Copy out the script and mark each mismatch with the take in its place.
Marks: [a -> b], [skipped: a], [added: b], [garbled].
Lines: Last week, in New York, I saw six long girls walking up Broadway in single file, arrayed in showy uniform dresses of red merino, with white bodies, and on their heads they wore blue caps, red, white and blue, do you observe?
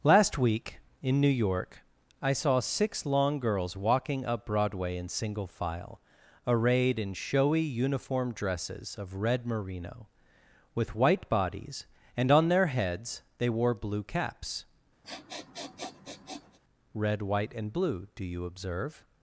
Last week, in New York, I saw six long girls walking up Broadway in single file, arrayed in showy uniform dresses of red merino, with white bodies, and on their heads they wore blue caps, red, white and blue, do you observe?